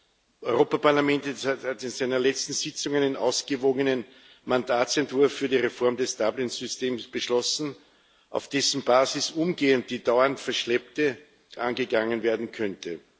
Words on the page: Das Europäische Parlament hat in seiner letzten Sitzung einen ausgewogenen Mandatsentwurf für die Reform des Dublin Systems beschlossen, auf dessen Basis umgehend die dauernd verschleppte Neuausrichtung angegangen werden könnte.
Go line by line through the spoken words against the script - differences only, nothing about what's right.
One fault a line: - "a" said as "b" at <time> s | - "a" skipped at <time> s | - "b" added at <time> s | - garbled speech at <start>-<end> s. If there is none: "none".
- "Neuausrichtung" skipped at 11.2 s